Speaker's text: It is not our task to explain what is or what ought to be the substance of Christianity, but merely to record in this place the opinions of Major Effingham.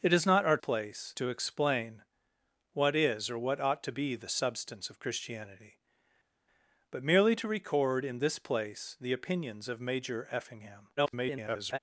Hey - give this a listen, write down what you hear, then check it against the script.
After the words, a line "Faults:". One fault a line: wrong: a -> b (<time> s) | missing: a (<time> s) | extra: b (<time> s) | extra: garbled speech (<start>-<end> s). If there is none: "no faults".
It is not our place to explain what is or what ought to be the substance of Christianity, but merely to record in this place the opinions of Major Effingham. [garbled]
Faults:
wrong: task -> place (0.6 s)
extra: garbled speech (11.0-11.8 s)